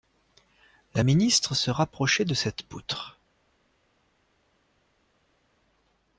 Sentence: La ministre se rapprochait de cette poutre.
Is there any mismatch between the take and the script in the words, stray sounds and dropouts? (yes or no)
no